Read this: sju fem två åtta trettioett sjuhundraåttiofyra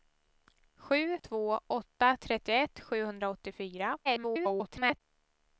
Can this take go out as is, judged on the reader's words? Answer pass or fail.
fail